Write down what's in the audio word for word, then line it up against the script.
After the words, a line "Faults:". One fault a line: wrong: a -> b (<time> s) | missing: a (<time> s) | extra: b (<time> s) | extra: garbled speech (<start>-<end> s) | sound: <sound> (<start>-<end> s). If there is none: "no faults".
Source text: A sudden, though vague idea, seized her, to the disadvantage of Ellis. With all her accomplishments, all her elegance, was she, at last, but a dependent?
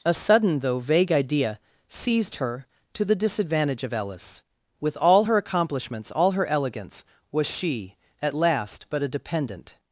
A sudden, though vague idea, seized her, to the disadvantage of Ellis. With all her accomplishments, all her elegance, was she, at last, but a dependent?
Faults:
no faults